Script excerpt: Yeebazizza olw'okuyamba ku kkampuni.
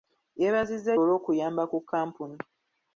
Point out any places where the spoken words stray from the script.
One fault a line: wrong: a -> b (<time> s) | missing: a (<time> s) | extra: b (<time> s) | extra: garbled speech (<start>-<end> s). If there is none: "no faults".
no faults